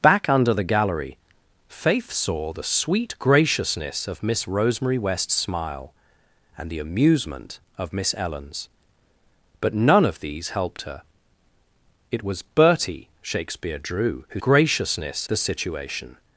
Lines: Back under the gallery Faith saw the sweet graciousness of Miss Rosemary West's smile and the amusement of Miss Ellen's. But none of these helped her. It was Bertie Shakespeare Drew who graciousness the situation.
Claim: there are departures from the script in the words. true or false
false